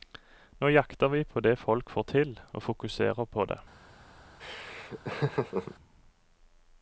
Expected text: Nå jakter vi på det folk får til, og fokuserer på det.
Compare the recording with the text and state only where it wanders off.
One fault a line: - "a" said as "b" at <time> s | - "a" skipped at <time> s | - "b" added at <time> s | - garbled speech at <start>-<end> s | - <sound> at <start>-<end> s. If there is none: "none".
- laugh at 4.4-5.7 s